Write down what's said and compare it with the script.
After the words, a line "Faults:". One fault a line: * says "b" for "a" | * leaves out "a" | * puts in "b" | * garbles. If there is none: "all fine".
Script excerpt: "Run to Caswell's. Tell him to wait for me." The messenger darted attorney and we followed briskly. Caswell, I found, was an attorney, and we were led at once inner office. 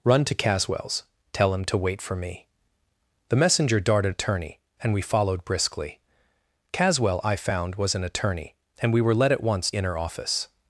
"Run to Caswell's. Tell him to wait for me." The messenger darted attorney and we followed briskly. Caswell, I found, was an attorney, and we were led at once inner office.
Faults:
all fine